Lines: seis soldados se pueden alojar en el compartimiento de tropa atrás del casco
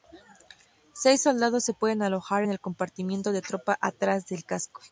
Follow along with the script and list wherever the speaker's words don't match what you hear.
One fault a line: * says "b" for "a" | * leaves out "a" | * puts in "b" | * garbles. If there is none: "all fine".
all fine